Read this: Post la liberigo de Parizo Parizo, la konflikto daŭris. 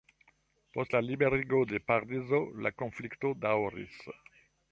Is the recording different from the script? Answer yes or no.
yes